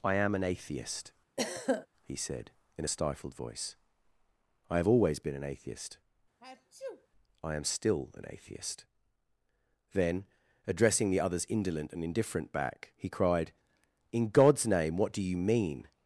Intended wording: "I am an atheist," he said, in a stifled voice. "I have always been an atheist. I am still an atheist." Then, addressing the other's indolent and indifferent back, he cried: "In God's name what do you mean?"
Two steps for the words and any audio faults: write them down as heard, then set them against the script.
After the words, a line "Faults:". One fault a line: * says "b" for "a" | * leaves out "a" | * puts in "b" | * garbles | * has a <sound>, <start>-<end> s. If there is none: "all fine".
"I am an atheist," he said, in a stifled voice. "I have always been an atheist. I am still an atheist." Then, addressing the other's indolent and indifferent back, he cried: "In God's name what do you mean?"
Faults:
* has a throat clearing, 1.4-1.9 s
* has a sneeze, 6.4-7.1 s